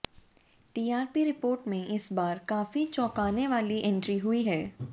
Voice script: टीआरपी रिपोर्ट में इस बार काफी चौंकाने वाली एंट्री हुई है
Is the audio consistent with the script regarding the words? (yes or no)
yes